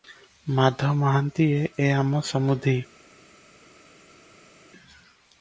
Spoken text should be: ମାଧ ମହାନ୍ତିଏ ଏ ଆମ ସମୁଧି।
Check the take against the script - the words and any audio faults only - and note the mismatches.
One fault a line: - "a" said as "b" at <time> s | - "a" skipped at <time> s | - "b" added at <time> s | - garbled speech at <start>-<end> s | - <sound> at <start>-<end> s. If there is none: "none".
none